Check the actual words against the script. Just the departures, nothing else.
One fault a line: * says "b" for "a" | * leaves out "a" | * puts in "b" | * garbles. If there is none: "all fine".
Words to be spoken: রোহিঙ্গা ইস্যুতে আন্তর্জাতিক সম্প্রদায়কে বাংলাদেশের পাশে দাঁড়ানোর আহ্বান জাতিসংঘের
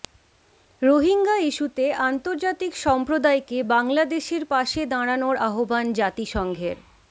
all fine